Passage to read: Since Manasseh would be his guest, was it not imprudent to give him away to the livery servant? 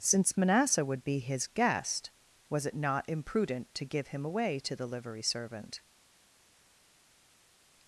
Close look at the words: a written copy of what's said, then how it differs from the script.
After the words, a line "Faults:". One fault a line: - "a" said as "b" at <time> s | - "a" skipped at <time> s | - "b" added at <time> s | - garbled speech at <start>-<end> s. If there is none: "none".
Since Manasseh would be his guest, was it not imprudent to give him away to the livery servant?
Faults:
none